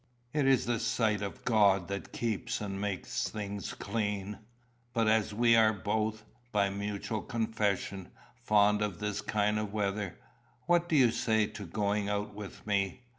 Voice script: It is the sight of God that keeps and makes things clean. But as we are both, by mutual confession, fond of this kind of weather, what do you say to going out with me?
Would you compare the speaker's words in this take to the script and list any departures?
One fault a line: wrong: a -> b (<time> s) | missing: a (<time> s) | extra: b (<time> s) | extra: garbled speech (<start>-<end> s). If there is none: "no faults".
no faults